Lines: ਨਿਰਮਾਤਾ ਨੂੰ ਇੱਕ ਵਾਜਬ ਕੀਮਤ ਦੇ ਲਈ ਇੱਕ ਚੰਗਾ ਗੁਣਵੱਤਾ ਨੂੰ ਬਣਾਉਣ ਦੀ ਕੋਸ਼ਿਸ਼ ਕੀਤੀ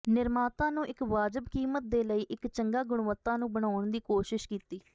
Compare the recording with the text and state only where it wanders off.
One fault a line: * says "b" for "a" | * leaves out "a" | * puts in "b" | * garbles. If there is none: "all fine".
all fine